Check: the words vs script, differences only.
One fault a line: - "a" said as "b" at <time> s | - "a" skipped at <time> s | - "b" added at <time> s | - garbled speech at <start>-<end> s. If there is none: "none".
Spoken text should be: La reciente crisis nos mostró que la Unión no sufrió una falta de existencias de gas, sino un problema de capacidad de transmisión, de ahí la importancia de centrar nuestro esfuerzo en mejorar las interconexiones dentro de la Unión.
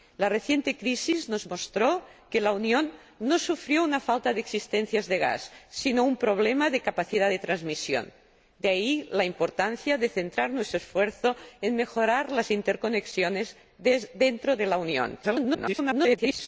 - garbled speech at 15.2-16.5 s